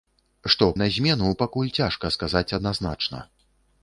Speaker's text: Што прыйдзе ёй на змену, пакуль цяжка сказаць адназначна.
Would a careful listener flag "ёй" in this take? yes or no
yes